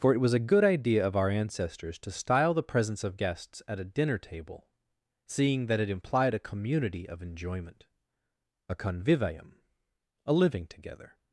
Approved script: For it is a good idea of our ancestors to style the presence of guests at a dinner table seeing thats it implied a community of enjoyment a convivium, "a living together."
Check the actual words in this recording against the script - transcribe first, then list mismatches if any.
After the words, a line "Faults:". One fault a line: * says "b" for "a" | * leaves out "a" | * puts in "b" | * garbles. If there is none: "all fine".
For it was a good idea of our ancestors to style the presence of guests at a dinner table seeing that it implied a community of enjoyment a convivium, "a living together."
Faults:
* says "was" for "is"
* says "that" for "thats"